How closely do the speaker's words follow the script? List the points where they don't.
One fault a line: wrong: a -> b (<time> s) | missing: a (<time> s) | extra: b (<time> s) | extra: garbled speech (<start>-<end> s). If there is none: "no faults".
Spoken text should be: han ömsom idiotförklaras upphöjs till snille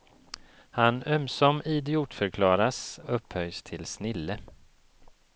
no faults